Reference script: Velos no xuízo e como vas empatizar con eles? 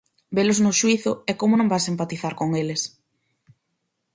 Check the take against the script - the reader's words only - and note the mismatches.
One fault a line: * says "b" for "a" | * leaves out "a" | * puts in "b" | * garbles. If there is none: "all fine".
* puts in "non"